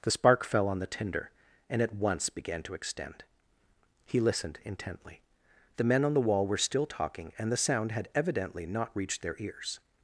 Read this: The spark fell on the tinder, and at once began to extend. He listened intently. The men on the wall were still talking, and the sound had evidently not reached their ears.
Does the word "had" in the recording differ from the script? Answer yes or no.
no